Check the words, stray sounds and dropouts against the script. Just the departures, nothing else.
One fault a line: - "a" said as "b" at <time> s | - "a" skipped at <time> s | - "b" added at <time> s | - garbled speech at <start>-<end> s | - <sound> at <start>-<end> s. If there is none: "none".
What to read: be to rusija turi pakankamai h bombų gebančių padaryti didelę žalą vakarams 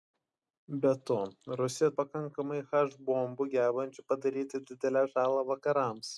- "turi" skipped at 1.9 s